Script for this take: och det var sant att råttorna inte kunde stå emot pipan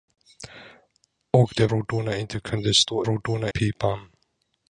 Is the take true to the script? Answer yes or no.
no